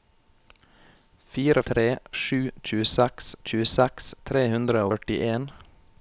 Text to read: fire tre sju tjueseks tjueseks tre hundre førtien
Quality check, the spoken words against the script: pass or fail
pass